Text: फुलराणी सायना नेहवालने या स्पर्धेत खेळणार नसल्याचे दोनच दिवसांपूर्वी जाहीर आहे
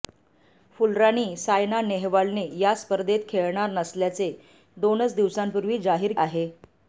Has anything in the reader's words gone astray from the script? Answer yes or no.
no